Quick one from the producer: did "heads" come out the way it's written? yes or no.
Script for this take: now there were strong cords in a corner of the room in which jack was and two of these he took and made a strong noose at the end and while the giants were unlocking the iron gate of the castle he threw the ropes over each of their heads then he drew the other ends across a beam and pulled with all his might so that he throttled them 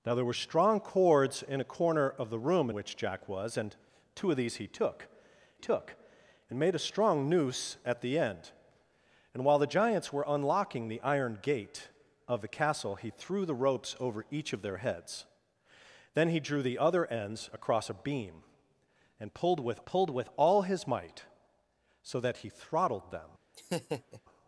yes